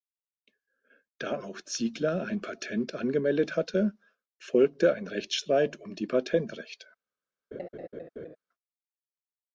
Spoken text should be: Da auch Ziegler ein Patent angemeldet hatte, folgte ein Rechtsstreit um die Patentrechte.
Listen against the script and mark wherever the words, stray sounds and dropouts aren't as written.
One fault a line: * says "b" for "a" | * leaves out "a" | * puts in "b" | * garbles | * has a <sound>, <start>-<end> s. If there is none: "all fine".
* has a laugh, 7.5-8.4 s